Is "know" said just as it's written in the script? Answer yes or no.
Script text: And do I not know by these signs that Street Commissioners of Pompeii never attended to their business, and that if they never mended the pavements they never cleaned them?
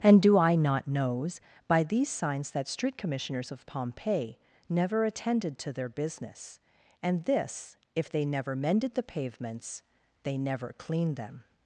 no